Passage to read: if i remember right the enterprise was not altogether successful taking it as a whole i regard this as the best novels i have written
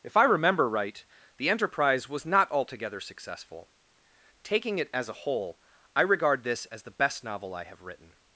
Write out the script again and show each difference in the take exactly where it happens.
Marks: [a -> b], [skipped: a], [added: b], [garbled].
if i remember right the enterprise was not altogether successful taking it as a whole i regard this as the best [novels -> novel] i have written